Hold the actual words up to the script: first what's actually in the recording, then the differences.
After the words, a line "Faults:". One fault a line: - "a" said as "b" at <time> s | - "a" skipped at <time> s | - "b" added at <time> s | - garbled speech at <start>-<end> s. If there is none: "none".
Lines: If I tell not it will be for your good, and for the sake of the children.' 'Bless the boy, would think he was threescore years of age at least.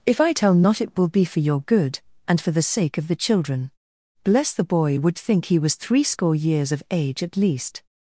If I tell not it will be for your good, and for the sake of the children.' 'Bless the boy, would think he was threescore years of age at least.
Faults:
none